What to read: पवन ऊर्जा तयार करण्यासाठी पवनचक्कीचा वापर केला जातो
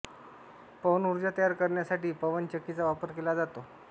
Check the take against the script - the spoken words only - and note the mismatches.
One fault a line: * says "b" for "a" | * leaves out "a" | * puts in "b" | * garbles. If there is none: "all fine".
all fine